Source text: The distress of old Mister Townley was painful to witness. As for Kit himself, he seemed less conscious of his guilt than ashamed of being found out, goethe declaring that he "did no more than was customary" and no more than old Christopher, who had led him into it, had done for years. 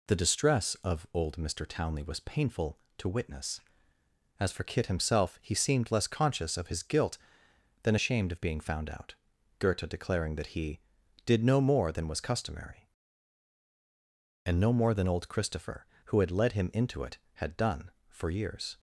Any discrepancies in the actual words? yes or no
no